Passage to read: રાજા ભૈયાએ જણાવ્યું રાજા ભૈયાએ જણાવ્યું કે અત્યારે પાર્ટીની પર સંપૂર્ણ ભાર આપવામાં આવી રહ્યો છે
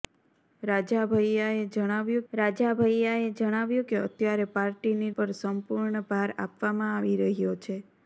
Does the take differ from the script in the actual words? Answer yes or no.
no